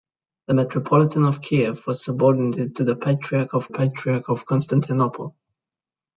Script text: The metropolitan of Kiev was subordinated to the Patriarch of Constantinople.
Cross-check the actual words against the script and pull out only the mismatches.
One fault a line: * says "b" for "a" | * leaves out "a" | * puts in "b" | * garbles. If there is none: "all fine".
* puts in "Patriarch of"